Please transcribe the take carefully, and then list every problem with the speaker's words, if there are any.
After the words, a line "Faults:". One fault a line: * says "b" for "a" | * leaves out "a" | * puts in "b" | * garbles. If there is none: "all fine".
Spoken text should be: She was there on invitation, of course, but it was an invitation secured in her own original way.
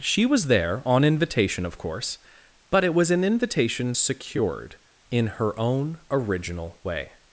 She was there on invitation, of course, but it was an invitation secured in her own original way.
Faults:
all fine